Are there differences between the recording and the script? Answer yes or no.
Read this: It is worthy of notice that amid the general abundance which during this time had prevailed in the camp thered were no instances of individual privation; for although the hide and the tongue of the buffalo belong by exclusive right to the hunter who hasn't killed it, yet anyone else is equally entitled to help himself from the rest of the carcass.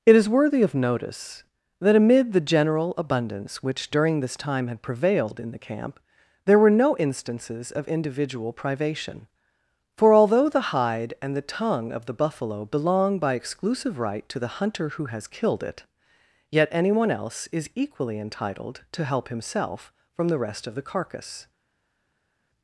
yes